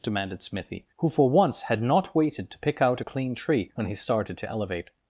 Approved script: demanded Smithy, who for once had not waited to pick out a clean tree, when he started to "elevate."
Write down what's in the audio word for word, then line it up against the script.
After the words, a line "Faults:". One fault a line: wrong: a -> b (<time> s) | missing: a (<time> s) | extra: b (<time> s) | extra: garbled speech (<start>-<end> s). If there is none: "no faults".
demanded Smithy, who for once had not waited to pick out a clean tree, when he started to "elevate."
Faults:
no faults